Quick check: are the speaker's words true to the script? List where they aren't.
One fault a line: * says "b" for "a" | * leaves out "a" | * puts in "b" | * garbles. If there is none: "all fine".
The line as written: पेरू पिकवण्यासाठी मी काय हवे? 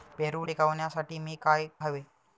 all fine